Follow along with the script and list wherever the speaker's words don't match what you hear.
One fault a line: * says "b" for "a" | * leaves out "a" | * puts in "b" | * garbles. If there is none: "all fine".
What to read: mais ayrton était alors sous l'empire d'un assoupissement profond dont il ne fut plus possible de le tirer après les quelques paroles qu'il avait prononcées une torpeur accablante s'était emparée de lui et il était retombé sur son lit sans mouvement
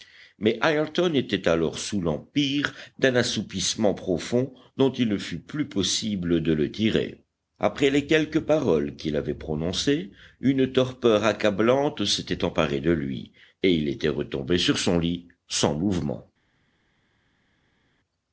all fine